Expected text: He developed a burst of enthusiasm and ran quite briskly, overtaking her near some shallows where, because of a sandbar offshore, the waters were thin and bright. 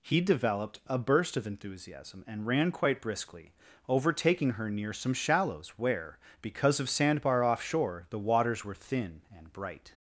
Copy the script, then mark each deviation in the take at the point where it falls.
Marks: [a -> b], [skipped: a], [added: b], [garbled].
He developed a burst of enthusiasm and ran quite briskly, overtaking her near some shallows where, because of [skipped: a] sandbar offshore, the waters were thin and bright.